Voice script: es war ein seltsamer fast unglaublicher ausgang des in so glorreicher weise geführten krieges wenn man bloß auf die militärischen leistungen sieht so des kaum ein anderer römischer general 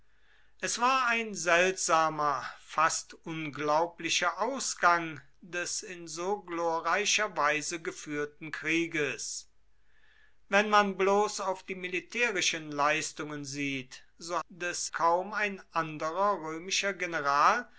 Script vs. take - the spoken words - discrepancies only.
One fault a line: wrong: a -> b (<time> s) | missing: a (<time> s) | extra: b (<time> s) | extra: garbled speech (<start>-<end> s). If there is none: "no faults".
no faults